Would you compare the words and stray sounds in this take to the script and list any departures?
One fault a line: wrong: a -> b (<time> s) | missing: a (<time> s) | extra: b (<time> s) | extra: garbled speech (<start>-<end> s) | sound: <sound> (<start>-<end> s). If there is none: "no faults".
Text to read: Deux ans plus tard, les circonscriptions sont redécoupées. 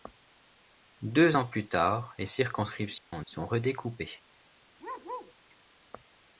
sound: dropout (3.0-3.1 s)
sound: bark (4.8-5.3 s)